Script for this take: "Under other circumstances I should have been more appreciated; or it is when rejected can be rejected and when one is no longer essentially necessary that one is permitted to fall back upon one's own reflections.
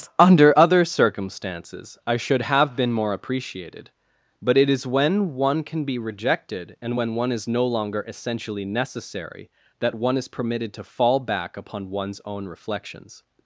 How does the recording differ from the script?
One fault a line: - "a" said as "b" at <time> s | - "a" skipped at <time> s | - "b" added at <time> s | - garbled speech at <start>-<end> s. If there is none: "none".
- "or" said as "but" at 4.4 s
- "rejected" said as "one" at 5.3 s